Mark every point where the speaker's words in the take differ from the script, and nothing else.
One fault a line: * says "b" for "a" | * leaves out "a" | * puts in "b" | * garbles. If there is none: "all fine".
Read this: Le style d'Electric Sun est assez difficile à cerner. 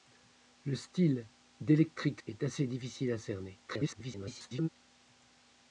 * leaves out "Sun"
* garbles